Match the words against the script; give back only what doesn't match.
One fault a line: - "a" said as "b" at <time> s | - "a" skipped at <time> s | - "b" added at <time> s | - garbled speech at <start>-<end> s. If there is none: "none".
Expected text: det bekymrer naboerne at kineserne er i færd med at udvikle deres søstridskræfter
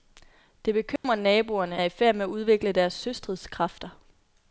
- "at kineserne" skipped at 1.8 s